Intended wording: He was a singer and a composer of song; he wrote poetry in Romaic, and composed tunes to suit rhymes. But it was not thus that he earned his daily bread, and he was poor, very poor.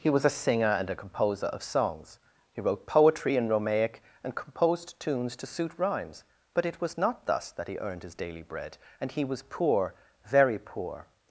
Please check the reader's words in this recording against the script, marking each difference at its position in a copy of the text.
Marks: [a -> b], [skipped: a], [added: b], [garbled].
He was a singer and a composer of [song; -> songs] he wrote poetry in Romaic, and composed tunes to suit rhymes. But it was not thus that he earned his daily bread, and he was poor, very poor.